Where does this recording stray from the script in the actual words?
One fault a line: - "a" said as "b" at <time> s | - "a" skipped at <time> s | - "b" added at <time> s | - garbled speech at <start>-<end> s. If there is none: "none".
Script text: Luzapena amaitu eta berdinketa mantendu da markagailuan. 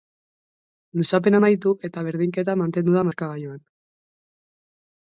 none